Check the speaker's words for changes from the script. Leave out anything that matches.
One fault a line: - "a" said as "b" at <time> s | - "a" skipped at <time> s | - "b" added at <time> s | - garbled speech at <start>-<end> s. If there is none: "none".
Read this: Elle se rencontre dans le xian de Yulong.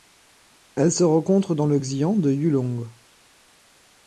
none